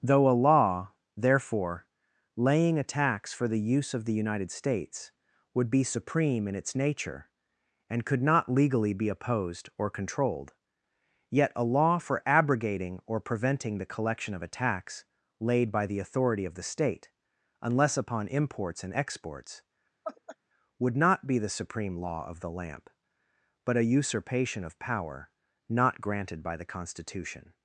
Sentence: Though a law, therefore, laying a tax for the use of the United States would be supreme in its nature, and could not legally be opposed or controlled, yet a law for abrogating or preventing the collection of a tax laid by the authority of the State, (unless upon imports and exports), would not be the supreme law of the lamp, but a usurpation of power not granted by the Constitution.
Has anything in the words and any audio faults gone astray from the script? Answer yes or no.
yes